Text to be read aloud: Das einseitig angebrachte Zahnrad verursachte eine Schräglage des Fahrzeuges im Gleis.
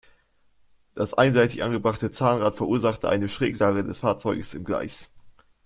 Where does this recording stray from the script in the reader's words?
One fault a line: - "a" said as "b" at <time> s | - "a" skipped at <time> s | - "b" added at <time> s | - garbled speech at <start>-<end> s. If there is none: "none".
none